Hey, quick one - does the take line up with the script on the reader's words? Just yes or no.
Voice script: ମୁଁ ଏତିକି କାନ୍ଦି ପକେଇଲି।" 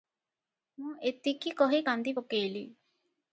no